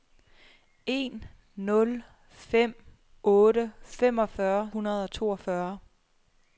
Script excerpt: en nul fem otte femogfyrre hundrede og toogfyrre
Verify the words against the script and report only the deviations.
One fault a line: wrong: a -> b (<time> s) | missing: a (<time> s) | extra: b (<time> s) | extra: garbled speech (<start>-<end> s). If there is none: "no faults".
no faults